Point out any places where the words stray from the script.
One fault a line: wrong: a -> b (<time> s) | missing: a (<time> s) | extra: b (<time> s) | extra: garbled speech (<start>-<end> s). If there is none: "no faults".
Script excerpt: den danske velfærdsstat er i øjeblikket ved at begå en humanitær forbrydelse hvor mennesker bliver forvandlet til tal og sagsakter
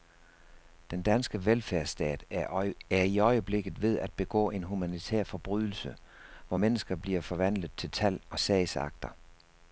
no faults